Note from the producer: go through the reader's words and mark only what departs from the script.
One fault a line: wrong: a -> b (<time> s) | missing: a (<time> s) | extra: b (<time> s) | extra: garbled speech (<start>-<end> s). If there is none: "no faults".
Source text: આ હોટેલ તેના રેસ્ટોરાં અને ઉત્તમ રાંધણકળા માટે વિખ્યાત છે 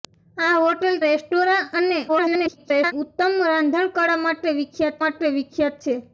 missing: તેના (1.0 s)
extra: garbled speech (2.1-2.9 s)
extra: માટે વિખ્યાત (5.0 s)